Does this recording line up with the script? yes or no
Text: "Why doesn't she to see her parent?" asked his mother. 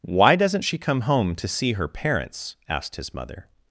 no